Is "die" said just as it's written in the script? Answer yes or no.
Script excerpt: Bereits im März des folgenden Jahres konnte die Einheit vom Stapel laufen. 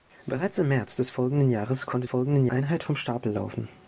no